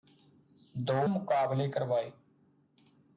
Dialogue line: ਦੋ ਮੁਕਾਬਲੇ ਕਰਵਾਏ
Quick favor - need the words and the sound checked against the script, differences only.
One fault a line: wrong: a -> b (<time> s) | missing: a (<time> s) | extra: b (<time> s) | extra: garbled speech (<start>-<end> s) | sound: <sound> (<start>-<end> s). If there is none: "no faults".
no faults